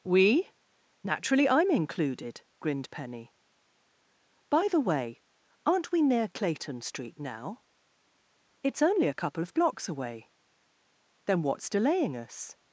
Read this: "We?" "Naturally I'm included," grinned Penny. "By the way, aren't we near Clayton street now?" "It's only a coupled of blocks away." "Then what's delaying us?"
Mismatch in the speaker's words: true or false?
true